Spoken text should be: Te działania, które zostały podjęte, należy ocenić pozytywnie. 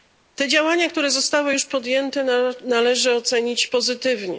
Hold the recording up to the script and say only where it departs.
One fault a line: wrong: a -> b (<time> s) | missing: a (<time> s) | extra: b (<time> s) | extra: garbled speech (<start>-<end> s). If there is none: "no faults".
extra: już (1.5 s)